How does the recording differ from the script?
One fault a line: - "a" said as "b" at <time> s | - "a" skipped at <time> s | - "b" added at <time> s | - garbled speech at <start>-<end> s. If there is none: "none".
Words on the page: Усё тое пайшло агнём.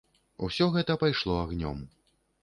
- "тое" said as "гэта" at 0.8 s